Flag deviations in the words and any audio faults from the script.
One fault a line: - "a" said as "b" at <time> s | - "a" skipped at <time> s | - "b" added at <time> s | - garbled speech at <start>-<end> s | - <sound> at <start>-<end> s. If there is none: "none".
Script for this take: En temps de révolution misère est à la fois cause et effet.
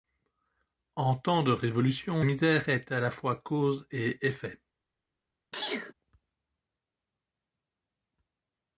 - sneeze at 5.5-5.9 s